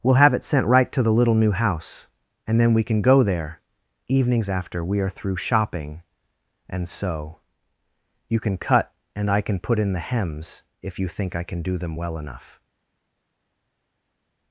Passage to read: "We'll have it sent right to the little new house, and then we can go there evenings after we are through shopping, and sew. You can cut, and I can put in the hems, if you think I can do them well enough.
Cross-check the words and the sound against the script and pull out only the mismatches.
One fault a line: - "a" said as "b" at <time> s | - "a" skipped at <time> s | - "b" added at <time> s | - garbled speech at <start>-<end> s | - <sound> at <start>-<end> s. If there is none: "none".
none